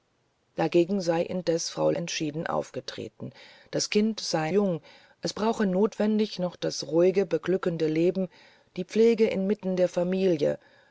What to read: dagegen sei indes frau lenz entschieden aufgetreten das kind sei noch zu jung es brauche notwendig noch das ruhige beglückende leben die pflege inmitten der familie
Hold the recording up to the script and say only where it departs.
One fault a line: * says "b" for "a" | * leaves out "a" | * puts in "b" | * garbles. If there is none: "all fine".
* leaves out "lenz"
* leaves out "noch zu"